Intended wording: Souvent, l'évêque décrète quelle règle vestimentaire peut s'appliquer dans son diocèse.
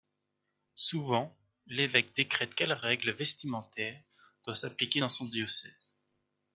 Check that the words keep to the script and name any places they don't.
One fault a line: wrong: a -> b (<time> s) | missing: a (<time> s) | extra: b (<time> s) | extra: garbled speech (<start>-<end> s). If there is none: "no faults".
wrong: peut -> doit (4.4 s)